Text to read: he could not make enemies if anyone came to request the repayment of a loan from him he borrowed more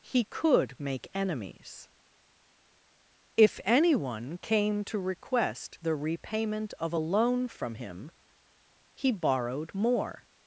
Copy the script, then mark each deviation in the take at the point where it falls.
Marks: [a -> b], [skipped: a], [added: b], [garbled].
he could [skipped: not] make enemies if anyone came to request the repayment of a loan from him he borrowed more